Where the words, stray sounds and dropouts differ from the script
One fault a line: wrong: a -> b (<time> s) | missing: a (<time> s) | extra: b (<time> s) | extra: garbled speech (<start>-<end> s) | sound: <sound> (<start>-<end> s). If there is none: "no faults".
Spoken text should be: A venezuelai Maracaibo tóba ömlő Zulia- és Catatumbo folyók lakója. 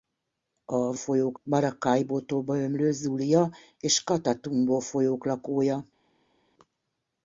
wrong: venezuelai -> folyók (0.9 s)